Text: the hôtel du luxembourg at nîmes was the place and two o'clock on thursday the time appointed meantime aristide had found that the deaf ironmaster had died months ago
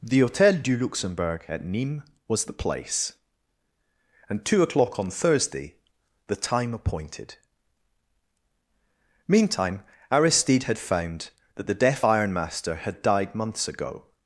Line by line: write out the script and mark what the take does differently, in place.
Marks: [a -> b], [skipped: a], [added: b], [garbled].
the hôtel du luxembourg at nîmes was the place and two o'clock on thursday the time appointed meantime aristide had found that the deaf ironmaster had died months ago